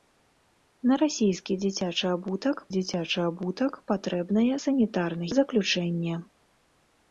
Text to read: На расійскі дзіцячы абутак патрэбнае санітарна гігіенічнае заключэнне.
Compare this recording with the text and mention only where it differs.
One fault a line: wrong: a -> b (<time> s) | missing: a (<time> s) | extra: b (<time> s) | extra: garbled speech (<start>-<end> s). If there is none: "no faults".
extra: дзіцячы абутак (2.8 s)
missing: гігіенічнае (5.2 s)